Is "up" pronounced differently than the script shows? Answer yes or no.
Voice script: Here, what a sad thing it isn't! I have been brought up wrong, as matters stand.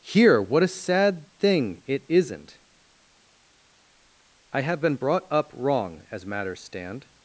no